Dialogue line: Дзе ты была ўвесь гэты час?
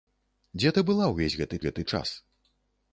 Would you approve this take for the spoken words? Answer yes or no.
no